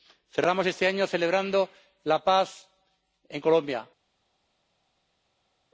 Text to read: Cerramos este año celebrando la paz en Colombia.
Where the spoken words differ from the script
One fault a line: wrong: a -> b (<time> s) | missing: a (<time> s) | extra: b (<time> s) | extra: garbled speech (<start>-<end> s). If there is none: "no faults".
no faults